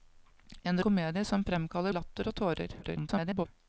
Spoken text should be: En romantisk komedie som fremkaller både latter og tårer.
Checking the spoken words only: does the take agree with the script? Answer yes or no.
no